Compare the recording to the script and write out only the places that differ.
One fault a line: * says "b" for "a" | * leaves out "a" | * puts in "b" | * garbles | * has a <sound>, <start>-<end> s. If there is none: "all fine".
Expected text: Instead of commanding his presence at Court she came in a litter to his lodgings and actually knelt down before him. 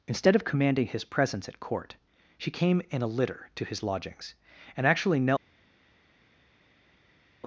* leaves out "down before him"